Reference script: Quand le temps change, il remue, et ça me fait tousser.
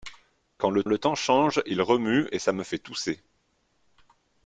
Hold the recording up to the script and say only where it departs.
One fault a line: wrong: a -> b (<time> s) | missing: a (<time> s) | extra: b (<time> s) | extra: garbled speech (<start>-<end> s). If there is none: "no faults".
extra: le (0.9 s)